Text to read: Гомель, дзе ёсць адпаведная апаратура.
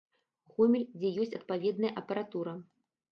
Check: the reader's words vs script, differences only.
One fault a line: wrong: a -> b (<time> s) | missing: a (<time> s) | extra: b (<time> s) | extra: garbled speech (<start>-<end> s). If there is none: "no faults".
no faults